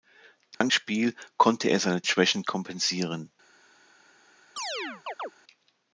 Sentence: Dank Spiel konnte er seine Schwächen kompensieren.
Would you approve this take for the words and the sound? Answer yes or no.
no